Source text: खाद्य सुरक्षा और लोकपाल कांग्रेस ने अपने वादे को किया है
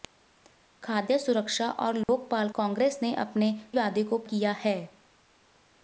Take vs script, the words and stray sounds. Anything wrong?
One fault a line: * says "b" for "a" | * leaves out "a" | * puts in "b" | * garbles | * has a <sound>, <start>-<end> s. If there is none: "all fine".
* has a dropout, 2.0-2.1 s